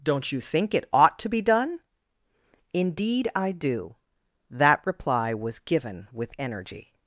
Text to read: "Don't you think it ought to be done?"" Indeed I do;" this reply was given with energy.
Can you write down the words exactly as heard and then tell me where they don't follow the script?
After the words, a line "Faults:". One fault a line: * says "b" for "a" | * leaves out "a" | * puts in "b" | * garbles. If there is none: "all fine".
"Don't you think it ought to be done?"" Indeed I do;" that reply was given with energy.
Faults:
* says "that" for "this"